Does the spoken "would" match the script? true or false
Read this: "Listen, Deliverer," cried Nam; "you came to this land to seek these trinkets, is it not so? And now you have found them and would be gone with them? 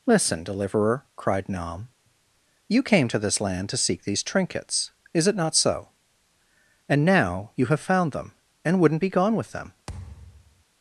false